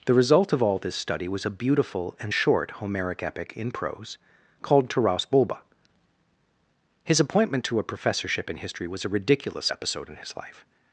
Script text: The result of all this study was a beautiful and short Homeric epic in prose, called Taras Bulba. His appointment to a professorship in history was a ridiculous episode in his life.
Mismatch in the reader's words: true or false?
false